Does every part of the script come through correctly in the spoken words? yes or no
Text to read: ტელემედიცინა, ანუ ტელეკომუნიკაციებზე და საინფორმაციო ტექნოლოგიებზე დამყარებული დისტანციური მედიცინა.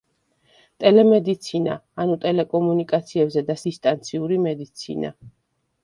no